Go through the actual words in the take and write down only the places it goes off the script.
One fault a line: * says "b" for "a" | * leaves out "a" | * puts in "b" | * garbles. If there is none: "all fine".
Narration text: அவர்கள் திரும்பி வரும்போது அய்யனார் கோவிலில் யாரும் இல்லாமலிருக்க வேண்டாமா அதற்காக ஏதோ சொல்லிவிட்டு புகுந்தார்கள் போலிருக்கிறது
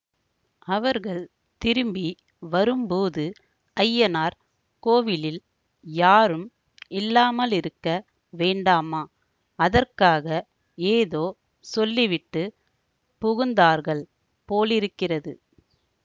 all fine